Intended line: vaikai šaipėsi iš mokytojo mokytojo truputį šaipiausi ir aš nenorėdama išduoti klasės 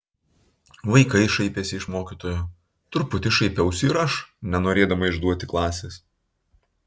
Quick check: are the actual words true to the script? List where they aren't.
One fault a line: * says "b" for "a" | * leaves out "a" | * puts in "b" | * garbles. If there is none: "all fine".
* leaves out "mokytojo"